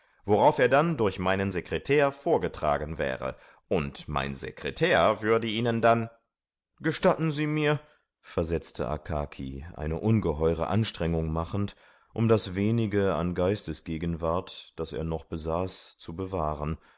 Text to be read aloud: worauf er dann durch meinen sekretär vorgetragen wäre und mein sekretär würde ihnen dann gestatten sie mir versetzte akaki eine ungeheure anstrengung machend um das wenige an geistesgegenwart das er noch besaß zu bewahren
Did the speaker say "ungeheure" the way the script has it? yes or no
yes